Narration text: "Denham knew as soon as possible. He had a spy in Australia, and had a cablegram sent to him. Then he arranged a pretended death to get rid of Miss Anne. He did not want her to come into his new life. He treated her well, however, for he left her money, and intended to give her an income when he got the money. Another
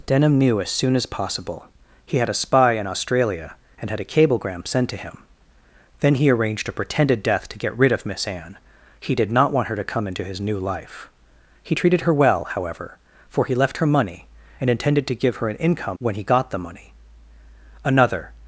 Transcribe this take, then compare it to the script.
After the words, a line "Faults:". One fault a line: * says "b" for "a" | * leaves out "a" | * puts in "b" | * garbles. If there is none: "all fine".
"Denham knew as soon as possible. He had a spy in Australia, and had a cablegram sent to him. Then he arranged a pretended death to get rid of Miss Anne. He did not want her to come into his new life. He treated her well, however, for he left her money, and intended to give her an income when he got the money. Another
Faults:
all fine